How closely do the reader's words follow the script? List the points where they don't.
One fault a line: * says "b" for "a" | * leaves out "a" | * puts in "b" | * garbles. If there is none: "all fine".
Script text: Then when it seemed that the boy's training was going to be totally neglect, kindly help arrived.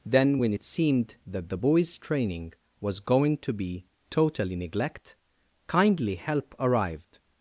all fine